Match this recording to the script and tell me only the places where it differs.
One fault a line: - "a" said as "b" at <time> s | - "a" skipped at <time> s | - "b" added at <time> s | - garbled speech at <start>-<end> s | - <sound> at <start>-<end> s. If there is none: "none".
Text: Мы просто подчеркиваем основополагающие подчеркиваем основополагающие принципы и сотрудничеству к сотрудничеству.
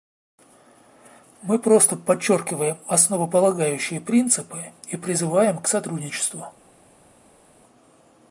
- "подчеркиваем основополагающие" skipped at 4.0 s
- "сотрудничеству" said as "призываем" at 5.0 s